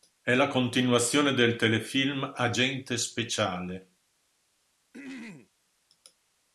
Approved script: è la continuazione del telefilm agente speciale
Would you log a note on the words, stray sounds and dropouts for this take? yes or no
yes